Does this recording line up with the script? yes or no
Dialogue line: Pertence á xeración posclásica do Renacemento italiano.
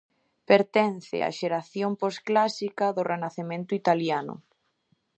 yes